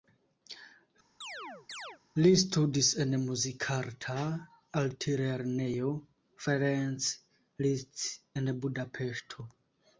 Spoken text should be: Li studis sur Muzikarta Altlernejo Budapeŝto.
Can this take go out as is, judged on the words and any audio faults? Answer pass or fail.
fail